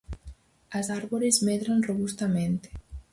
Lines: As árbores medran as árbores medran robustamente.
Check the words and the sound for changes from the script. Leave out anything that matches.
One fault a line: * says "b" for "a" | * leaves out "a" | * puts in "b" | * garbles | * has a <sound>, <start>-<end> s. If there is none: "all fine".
* leaves out "as árbores medran"